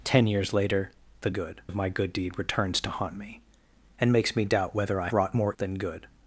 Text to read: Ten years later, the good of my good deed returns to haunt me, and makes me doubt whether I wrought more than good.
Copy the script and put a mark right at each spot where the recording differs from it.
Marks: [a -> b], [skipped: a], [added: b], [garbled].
Ten years later, the good of my good deed returns to haunt me, and makes me doubt whether I wrought more than good.